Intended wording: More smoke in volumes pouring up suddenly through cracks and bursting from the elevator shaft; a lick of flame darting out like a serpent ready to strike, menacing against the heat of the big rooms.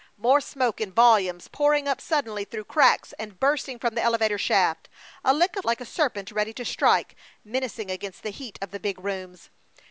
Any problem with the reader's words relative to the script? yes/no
yes